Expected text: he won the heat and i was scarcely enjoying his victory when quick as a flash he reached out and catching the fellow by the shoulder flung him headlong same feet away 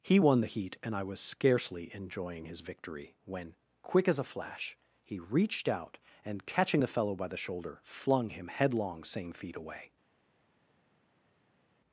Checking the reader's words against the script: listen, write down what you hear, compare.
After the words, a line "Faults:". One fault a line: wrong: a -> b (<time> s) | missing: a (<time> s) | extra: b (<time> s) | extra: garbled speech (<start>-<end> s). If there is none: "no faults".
he won the heat and i was scarcely enjoying his victory when quick as a flash he reached out and catching the fellow by the shoulder flung him headlong same feet away
Faults:
no faults